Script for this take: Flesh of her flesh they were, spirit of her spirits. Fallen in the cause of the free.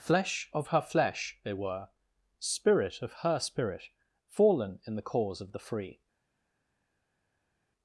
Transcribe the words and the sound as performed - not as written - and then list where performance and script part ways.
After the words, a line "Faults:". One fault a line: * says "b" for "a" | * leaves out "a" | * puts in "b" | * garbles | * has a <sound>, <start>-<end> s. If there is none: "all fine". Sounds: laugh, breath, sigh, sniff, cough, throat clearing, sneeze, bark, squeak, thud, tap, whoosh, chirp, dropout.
Flesh of her flesh they were, spirit of her spirit. Fallen in the cause of the free.
Faults:
* says "spirit" for "spirits"